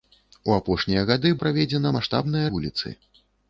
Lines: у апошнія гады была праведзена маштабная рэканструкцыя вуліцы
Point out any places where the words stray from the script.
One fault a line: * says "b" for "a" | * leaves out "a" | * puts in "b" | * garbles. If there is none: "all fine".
* leaves out "была"
* leaves out "рэканструкцыя"